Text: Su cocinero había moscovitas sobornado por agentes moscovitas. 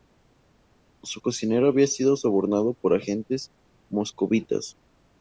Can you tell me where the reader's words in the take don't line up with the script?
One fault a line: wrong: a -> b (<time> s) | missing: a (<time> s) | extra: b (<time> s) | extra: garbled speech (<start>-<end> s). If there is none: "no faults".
wrong: moscovitas -> sido (1.9 s)